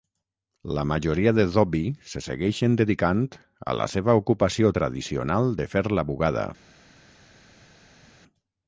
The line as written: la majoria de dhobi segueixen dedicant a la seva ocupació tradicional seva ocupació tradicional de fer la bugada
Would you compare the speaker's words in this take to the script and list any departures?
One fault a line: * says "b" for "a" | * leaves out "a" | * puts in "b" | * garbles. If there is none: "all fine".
* puts in "se"
* leaves out "seva ocupació tradicional"